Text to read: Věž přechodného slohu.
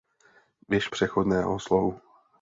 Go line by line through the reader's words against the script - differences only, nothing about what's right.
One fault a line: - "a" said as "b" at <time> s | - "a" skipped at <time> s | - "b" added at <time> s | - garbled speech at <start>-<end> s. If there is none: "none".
none